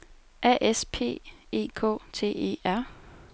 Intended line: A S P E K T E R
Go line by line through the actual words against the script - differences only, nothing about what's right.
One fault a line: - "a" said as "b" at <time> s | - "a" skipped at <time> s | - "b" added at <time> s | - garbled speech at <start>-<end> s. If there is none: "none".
none